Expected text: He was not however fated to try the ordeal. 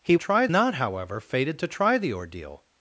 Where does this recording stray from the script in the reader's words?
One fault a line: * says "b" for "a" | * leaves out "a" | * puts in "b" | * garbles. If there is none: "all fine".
* says "try" for "was"